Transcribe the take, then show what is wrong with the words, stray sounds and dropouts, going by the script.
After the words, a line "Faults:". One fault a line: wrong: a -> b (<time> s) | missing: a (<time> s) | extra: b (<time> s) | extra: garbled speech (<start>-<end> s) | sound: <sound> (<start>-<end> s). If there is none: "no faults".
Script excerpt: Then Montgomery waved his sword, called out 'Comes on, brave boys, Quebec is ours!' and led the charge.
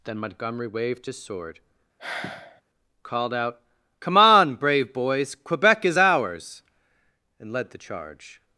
Then Montgomery waved his sword, called out 'Come on, brave boys, Quebec is ours!' and led the charge.
Faults:
sound: sigh (2.0-2.6 s)
wrong: Comes -> Come (4.0 s)